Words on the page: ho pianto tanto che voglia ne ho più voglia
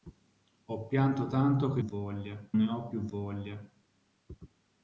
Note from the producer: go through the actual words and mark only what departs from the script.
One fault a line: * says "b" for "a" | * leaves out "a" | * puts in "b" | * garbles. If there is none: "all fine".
all fine